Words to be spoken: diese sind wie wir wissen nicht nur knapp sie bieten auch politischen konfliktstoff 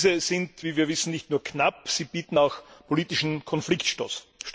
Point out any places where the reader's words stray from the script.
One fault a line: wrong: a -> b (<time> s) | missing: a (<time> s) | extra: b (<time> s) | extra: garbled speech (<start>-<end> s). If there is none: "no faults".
no faults